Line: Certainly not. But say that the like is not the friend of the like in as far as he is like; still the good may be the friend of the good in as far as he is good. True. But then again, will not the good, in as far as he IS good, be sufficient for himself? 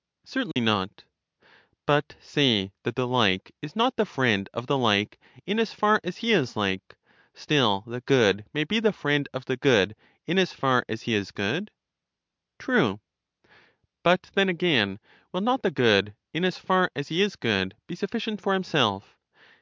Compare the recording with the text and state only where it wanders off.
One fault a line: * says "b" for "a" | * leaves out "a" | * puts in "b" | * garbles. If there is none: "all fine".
all fine